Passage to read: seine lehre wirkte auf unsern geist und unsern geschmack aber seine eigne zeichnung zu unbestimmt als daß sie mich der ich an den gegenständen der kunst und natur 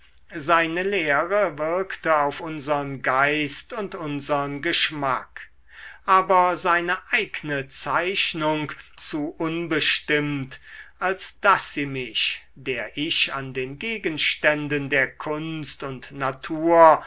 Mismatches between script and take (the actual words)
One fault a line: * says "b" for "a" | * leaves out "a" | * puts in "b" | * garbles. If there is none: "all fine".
all fine